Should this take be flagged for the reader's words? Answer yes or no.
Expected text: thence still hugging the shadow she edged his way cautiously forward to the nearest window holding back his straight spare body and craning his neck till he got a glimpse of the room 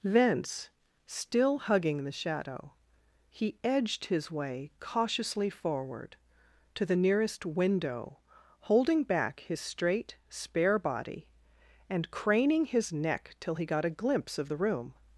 yes